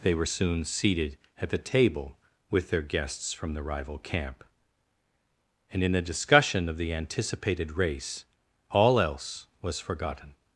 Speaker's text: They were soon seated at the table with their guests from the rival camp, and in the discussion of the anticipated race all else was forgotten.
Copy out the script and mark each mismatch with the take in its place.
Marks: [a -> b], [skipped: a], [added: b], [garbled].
They were soon seated at the table with their guests from the rival camp, and in the discussion of the anticipated race all else was forgotten.